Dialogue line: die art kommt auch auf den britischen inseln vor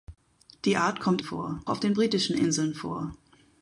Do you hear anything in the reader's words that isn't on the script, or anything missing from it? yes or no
yes